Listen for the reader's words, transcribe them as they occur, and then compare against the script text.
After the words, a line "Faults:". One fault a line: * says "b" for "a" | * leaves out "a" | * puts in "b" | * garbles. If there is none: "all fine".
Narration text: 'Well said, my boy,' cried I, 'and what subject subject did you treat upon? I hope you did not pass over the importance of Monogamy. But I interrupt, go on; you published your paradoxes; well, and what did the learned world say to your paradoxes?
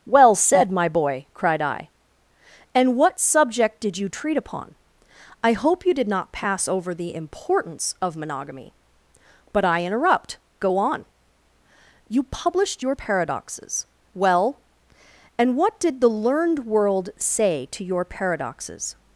'Well said, my boy,' cried I, 'and what subject did you treat upon? I hope you did not pass over the importance of Monogamy. But I interrupt, go on; you published your paradoxes; well, and what did the learned world say to your paradoxes?
Faults:
* leaves out "subject"